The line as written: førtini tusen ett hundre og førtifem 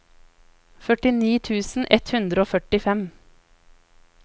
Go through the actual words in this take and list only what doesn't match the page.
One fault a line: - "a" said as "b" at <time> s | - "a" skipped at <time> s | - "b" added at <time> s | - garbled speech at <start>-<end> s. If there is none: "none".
none